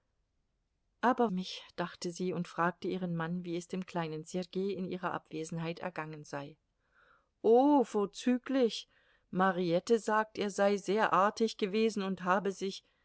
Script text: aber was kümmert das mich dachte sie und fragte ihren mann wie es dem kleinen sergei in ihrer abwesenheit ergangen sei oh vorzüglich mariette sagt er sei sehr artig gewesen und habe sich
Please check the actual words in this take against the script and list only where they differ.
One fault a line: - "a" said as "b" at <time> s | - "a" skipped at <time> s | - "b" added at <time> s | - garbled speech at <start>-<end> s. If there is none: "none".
- "was kümmert das" skipped at 1.3 s